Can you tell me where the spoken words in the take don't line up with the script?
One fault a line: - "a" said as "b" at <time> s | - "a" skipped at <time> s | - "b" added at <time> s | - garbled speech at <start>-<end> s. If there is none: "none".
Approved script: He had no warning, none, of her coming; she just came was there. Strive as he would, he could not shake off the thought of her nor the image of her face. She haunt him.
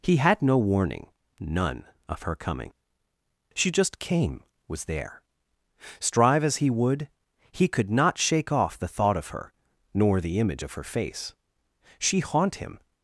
none